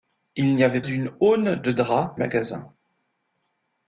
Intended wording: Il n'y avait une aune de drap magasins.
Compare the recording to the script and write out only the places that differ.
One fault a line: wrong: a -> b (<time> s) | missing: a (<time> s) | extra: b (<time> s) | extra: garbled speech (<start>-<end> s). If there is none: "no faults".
no faults